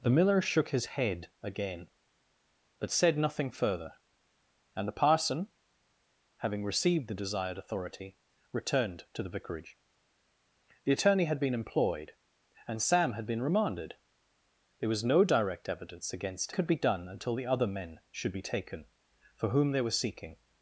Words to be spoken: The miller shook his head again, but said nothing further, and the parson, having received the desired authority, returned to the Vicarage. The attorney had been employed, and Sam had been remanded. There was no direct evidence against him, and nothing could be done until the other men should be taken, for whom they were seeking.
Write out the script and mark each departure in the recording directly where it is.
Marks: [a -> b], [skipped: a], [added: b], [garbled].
The miller shook his head again, but said nothing further, and the parson, having received the desired authority, returned to the Vicarage. The attorney had been employed, and Sam had been remanded. There was no direct evidence against [skipped: him, and nothing] could be done until the other men should be taken, for whom they were seeking.